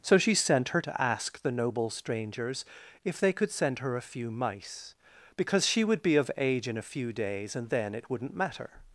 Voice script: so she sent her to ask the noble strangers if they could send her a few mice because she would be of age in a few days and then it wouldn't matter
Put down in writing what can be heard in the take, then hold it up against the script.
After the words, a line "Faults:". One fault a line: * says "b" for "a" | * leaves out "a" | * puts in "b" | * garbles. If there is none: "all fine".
so she sent her to ask the noble strangers if they could send her a few mice because she would be of age in a few days and then it wouldn't matter
Faults:
all fine